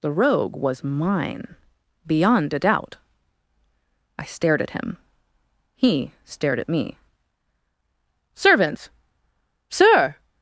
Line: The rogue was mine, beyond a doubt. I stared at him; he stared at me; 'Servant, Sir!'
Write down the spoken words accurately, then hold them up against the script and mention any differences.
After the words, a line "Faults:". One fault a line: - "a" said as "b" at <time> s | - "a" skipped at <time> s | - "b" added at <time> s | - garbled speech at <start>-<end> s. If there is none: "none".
The rogue was mine, beyond a doubt. I stared at him; he stared at me; 'Servant, Sir!'
Faults:
none